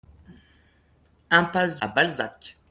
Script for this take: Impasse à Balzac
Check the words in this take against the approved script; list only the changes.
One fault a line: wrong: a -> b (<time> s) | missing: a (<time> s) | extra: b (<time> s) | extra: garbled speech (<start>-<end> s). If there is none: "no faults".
no faults